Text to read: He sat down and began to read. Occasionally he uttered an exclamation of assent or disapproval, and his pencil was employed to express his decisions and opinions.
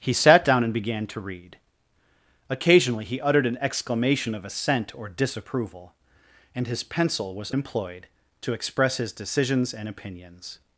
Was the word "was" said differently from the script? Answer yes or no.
no